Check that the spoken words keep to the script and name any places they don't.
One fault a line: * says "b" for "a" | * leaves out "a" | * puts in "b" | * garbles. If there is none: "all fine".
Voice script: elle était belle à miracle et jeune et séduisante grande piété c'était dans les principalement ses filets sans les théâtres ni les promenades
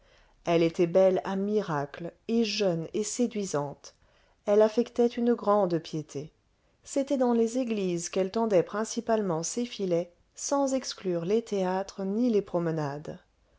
* puts in "elle affectait une"
* puts in "églises qu'elle tendait"
* puts in "exclure"